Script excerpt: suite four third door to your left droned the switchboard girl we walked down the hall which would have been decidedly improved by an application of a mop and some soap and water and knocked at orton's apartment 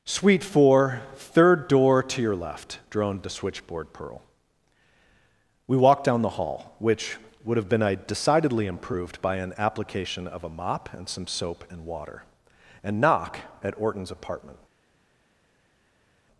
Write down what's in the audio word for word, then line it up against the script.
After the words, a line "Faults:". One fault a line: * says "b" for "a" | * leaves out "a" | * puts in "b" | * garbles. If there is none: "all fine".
suite four third door to your left droned the switchboard pearl we walked down the hall which would have been decidedly improved by an application of a mop and some soap and water and knock at orton's apartment
Faults:
* says "pearl" for "girl"
* says "knock" for "knocked"